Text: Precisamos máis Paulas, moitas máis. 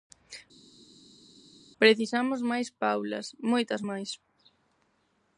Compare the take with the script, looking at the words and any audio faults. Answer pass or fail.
pass